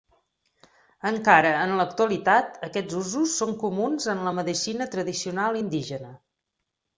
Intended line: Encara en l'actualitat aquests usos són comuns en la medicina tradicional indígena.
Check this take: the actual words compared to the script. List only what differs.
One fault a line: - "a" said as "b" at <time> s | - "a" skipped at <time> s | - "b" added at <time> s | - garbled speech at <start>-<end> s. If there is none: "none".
none